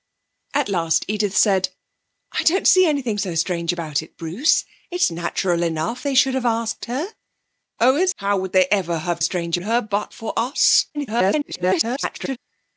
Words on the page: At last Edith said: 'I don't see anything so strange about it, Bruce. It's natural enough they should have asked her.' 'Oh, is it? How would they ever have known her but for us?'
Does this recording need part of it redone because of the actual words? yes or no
yes